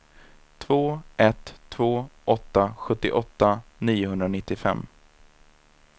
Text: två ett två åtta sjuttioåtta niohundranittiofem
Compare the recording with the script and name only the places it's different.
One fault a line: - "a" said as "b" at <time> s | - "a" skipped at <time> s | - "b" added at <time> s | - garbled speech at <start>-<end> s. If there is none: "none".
none